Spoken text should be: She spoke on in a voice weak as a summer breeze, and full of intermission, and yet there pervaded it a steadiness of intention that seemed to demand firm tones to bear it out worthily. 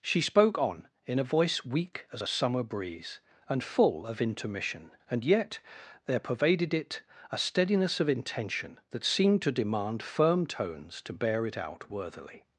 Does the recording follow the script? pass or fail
pass